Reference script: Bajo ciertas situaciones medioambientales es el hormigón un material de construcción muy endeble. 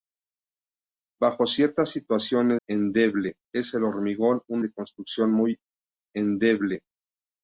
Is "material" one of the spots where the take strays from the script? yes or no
yes